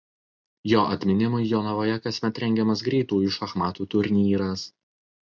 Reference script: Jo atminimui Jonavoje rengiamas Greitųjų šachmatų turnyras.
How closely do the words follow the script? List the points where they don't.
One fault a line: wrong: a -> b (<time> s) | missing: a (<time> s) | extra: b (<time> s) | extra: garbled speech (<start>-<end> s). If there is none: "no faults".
extra: kasmet (2.0 s)